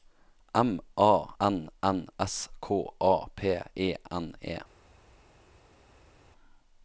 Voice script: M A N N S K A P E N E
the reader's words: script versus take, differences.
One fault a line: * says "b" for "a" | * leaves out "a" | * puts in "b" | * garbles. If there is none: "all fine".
all fine